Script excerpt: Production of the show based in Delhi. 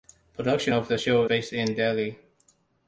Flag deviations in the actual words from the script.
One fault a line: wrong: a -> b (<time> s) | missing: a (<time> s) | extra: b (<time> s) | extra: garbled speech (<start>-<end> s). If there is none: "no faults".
no faults